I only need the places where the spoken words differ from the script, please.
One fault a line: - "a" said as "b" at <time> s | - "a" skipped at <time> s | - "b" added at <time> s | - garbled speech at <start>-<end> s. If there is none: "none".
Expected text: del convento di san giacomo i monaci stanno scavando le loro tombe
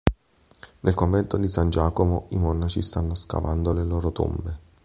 - "del" said as "nel" at 0.8 s